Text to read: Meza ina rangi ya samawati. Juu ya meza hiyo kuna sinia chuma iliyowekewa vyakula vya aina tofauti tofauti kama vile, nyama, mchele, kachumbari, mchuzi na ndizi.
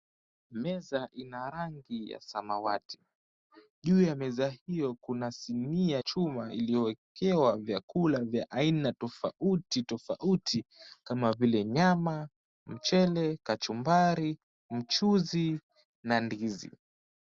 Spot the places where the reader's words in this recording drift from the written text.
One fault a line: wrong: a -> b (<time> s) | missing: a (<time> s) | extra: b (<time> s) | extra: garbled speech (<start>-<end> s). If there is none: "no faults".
no faults